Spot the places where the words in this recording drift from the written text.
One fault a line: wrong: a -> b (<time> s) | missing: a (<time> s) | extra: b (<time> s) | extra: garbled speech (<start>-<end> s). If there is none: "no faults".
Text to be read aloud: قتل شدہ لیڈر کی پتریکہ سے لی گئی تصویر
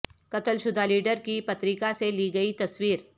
no faults